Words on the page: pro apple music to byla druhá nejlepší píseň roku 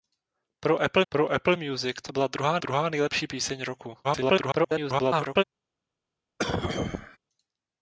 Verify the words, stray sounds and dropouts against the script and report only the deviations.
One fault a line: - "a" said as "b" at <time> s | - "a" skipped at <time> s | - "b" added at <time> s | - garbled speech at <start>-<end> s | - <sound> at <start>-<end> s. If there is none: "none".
- "pro apple" added at 1.1 s
- "druhá" added at 2.6 s
- garbled speech at 4.0-5.4 s
- cough at 6.4-7.2 s